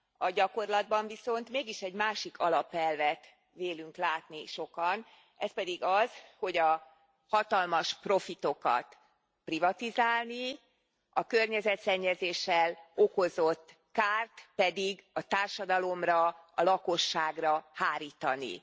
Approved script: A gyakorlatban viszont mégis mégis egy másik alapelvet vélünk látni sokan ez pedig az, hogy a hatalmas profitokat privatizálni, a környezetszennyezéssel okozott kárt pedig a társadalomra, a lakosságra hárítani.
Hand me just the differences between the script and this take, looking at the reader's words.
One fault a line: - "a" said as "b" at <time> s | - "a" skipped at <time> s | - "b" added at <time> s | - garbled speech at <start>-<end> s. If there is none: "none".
- "mégis" skipped at 1.8 s